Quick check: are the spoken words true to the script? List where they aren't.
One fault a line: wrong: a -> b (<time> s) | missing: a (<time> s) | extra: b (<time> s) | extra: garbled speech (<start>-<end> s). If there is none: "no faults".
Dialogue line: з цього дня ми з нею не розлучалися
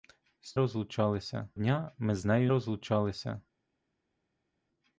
wrong: цього -> розлучалися (0.5 s)
missing: не (2.5 s)